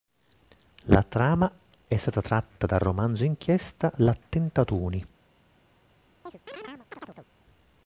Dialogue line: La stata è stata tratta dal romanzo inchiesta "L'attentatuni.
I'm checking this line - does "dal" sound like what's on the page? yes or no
yes